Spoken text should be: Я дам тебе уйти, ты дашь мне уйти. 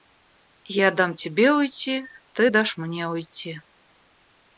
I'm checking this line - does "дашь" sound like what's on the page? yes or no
yes